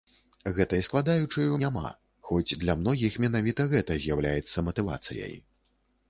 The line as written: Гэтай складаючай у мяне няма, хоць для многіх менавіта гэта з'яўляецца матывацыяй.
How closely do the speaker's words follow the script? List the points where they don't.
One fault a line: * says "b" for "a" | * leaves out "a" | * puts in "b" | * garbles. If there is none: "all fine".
* leaves out "мяне"